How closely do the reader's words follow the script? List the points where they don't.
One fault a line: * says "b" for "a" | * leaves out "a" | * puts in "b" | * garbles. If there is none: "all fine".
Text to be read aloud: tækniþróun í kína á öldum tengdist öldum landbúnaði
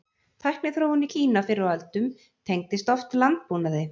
* puts in "fyrr"
* says "oft" for "öldum"